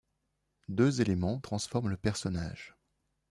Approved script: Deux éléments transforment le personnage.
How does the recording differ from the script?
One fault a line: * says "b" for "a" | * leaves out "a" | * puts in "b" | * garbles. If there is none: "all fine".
all fine